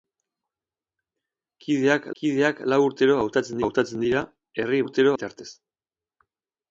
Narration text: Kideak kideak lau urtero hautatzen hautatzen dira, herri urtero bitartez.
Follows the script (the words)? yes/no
yes